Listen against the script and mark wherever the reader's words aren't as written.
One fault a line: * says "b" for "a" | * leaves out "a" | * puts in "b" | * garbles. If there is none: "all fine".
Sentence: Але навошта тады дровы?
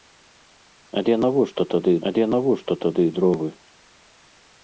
* puts in "але навошта тады"